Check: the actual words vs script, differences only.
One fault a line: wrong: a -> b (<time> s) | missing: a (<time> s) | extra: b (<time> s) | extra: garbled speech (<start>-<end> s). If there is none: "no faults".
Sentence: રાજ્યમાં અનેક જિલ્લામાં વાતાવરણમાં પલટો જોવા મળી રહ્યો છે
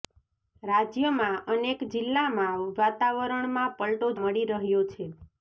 missing: જોવા (4.1 s)